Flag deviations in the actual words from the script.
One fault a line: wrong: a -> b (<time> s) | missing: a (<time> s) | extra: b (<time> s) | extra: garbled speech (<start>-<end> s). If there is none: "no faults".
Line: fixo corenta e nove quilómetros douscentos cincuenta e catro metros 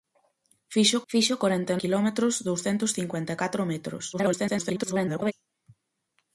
extra: fixo (1.1 s)
missing: nove (1.8 s)
extra: garbled speech (4.1-5.3 s)